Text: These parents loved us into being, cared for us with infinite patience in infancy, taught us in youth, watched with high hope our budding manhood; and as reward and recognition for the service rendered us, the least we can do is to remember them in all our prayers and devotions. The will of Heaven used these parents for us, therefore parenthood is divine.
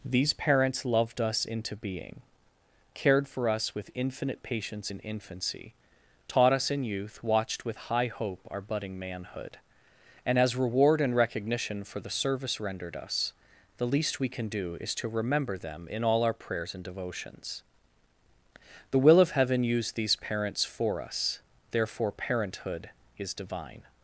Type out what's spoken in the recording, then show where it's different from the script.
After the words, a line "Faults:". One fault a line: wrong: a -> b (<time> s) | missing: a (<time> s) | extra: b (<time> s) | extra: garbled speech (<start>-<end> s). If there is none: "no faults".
These parents loved us into being, cared for us with infinite patience in infancy, taught us in youth, watched with high hope our budding manhood; and as reward and recognition for the service rendered us, the least we can do is to remember them in all our prayers and devotions. The will of Heaven used these parents for us, therefore parenthood is divine.
Faults:
no faults